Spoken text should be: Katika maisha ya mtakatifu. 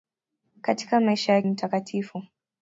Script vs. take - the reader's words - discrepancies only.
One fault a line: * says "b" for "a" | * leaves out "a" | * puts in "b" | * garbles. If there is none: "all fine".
all fine